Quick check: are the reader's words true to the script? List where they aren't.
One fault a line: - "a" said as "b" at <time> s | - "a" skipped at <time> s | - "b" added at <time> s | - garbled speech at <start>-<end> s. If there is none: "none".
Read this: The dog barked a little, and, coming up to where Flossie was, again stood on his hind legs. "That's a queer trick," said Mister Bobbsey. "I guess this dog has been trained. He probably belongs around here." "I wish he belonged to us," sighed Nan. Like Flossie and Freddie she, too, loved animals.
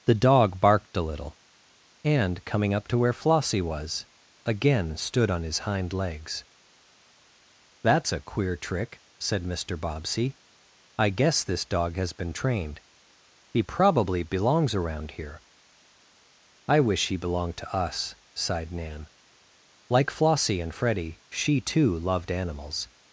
none